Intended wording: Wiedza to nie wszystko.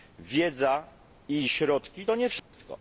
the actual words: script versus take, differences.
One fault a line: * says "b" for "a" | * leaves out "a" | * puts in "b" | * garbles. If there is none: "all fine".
* puts in "i środki"